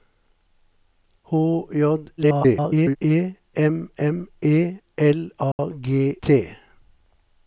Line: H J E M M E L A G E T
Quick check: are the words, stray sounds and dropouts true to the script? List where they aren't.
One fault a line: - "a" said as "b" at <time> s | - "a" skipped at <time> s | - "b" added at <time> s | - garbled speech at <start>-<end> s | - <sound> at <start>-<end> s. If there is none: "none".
- garbled speech at 2.2-3.0 s
- dropout at 5.5-5.6 s
- "E" skipped at 6.2 s